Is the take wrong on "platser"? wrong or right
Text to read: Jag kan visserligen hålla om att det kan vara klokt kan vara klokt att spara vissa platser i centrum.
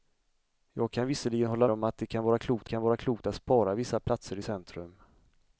right